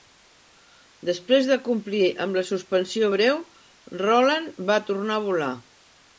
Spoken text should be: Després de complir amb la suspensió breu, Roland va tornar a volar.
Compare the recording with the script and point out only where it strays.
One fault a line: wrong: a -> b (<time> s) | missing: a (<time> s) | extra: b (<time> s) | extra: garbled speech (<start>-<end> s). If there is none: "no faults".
no faults